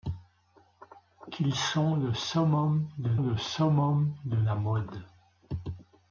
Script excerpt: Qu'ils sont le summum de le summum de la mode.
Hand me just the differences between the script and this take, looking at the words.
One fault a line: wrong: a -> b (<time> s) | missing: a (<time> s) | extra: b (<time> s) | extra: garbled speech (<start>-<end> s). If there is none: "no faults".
no faults